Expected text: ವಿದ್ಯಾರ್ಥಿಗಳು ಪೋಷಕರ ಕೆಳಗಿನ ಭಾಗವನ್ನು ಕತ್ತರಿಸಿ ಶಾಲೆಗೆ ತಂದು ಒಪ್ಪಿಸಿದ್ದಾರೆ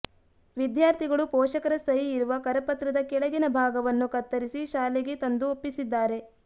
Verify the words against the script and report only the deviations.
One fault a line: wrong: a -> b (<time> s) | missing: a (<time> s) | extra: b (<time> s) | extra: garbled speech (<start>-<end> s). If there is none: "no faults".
extra: ಸಹಿ ಇರುವ ಕರಪತ್ರದ (1.8 s)